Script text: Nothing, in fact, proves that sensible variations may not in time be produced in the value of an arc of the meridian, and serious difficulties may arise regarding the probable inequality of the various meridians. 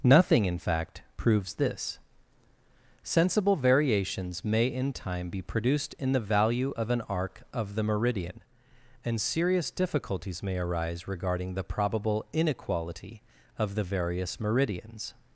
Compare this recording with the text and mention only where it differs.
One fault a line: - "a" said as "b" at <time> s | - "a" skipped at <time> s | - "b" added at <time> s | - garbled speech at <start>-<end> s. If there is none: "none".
- "that" said as "this" at 1.5 s
- "not" skipped at 4.7 s